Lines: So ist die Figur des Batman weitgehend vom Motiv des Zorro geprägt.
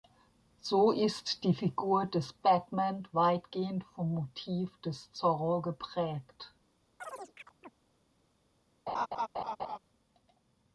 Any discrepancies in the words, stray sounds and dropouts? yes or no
yes